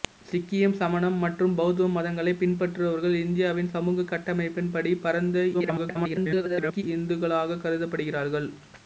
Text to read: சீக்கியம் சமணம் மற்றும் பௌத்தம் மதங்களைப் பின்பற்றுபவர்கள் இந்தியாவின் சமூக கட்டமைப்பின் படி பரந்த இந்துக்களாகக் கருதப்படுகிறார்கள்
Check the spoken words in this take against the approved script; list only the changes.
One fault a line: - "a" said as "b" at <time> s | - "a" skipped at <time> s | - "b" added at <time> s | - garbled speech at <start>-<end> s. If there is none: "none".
- garbled speech at 5.5-6.8 s